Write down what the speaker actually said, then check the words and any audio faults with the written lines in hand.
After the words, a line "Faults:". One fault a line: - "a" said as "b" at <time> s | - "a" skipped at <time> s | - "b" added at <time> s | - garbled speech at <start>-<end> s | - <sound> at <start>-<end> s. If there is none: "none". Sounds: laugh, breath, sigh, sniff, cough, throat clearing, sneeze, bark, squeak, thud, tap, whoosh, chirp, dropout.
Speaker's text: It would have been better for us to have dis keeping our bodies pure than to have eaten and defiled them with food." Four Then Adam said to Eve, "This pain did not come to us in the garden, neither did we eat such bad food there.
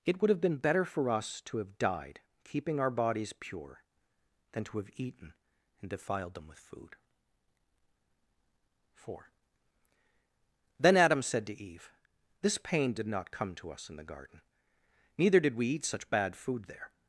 It would have been better for us to have died keeping our bodies pure than to have eaten and defiled them with food." Four Then Adam said to Eve, "This pain did not come to us in the garden, neither did we eat such bad food there.
Faults:
- "dis" said as "died" at 1.8 s